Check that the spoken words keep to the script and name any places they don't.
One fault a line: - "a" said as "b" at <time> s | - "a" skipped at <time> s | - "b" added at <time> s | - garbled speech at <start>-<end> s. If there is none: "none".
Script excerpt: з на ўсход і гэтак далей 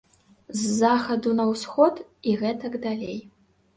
- "захаду" added at 0.8 s